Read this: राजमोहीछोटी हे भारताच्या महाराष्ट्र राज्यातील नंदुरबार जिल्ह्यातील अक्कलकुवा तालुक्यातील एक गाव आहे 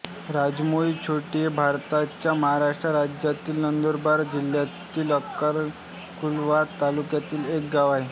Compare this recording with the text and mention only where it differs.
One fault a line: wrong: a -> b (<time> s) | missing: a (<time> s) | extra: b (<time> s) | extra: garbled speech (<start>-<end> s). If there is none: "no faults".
no faults